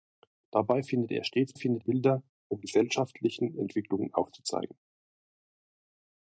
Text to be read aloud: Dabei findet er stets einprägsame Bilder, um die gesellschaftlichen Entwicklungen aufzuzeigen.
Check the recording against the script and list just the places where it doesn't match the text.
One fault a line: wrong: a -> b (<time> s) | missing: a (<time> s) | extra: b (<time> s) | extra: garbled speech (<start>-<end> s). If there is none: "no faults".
wrong: einprägsame -> findet (1.5 s)
missing: die (2.6 s)